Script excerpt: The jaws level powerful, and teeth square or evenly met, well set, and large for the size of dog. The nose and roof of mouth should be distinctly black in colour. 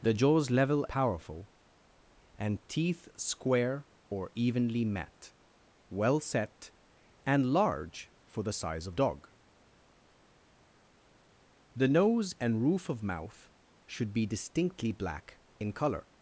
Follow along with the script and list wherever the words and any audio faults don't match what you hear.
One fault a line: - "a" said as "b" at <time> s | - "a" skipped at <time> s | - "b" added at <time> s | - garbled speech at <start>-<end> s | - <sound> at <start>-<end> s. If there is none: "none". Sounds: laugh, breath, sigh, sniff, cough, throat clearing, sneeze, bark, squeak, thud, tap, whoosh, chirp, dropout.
none